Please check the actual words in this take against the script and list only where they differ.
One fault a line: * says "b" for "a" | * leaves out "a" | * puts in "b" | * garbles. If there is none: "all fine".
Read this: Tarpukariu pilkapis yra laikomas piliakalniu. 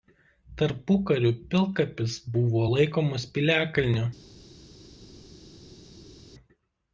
* says "buvo" for "yra"